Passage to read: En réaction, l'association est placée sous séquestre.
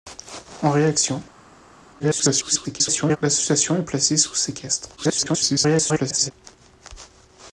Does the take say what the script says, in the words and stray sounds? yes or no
no